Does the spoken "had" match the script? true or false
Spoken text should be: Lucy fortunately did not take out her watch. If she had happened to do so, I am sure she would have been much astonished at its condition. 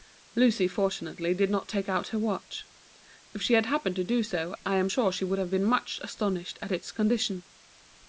true